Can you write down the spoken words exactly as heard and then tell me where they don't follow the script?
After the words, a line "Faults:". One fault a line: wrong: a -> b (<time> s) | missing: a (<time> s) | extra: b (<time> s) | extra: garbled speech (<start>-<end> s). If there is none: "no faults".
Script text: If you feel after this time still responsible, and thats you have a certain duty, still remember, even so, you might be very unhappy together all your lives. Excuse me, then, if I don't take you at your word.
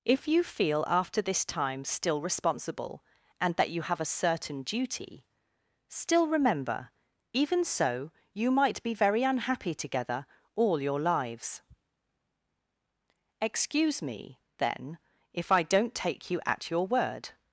If you feel after this time still responsible, and that you have a certain duty, still remember, even so, you might be very unhappy together all your lives. Excuse me, then, if I don't take you at your word.
Faults:
wrong: thats -> that (3.5 s)